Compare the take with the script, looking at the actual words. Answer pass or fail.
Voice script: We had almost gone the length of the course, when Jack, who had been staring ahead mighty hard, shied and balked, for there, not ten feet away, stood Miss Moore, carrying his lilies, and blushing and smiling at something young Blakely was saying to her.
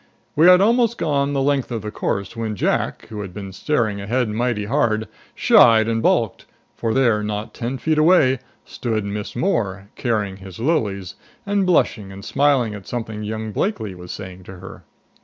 pass